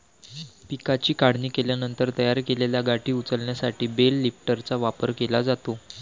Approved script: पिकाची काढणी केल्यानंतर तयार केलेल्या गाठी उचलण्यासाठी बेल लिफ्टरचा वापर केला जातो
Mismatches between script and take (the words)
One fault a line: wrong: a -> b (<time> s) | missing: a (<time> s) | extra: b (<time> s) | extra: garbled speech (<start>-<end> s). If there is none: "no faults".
no faults